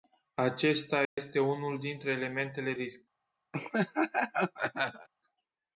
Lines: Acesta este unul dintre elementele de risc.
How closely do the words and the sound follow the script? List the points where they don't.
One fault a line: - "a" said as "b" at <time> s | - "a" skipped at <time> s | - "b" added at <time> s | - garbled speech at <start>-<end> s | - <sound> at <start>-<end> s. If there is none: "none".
- dropout at 1.0-1.2 s
- "de" skipped at 2.7 s
- laugh at 3.5-5.1 s